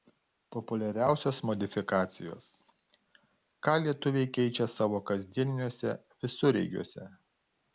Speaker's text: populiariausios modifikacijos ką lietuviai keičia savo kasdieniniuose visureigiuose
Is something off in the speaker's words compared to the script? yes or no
no